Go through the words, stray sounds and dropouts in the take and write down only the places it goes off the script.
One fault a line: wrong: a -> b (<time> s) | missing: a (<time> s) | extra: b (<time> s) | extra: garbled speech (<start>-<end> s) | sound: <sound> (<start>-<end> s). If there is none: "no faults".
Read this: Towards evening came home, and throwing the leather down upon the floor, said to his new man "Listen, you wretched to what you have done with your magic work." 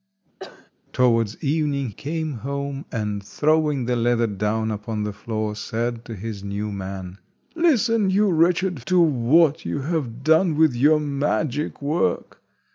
sound: cough (0.4-0.7 s)